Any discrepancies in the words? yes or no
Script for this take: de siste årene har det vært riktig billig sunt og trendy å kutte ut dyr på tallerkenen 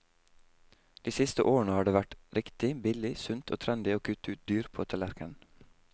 no